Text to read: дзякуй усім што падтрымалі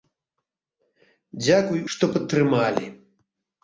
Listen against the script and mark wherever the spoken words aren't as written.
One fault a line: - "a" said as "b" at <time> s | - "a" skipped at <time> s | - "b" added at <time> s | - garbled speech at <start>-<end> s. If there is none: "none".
- "усім" skipped at 1.9 s